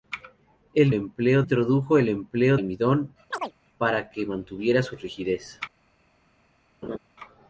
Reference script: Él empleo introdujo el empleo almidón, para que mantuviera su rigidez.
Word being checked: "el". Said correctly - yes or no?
yes